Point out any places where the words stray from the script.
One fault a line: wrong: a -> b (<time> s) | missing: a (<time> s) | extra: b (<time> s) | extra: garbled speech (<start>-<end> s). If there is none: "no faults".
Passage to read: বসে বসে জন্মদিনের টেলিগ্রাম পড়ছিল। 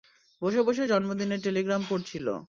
no faults